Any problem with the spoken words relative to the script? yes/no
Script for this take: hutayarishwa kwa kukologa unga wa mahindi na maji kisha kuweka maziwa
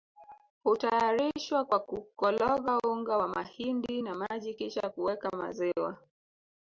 no